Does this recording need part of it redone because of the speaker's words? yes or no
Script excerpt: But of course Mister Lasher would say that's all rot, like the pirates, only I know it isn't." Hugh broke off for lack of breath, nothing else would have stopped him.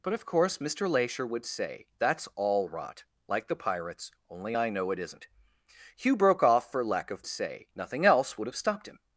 yes